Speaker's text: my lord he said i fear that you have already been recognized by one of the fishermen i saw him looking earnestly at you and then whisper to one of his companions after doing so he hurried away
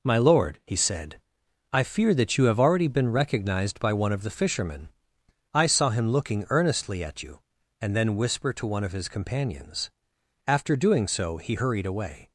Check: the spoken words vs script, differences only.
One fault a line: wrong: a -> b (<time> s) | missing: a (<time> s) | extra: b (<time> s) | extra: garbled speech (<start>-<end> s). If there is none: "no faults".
no faults